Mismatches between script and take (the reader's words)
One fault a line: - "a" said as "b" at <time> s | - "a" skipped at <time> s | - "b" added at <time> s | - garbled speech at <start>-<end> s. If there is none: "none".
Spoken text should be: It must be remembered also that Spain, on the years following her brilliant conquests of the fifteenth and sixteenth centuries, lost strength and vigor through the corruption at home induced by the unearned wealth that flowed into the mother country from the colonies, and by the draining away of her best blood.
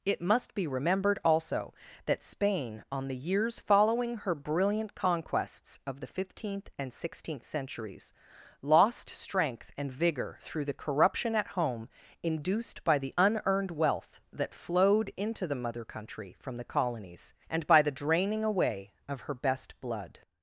none